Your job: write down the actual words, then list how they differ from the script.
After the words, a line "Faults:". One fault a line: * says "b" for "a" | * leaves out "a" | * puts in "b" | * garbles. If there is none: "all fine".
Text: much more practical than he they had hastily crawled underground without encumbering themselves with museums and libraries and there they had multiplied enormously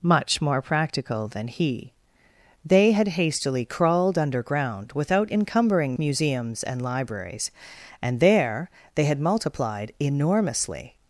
much more practical than he they had hastily crawled underground without encumbering museums and libraries and there they had multiplied enormously
Faults:
* leaves out "themselves with"